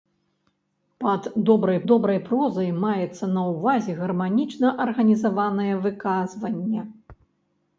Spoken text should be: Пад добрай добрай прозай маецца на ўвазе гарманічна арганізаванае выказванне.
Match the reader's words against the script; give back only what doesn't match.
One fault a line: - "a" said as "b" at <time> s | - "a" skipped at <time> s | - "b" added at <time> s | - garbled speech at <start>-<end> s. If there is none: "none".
none